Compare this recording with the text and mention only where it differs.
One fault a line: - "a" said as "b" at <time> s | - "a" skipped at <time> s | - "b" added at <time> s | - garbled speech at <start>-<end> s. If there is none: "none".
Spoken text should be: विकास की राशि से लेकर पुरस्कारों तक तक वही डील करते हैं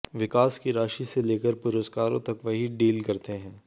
- "तक" skipped at 2.4 s